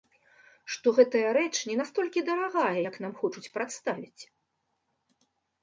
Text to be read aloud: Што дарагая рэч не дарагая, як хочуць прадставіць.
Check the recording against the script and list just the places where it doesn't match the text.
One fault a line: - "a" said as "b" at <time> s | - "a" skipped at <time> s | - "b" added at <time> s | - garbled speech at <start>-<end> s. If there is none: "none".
- "дарагая" said as "гэтая" at 1.0 s
- "настолькі" added at 1.8 s
- "нам" added at 3.1 s